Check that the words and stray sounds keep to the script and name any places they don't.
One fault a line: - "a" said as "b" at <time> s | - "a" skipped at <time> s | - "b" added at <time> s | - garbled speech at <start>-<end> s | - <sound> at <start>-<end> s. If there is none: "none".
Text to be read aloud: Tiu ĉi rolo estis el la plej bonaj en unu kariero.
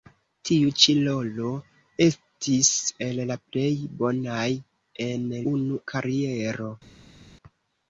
none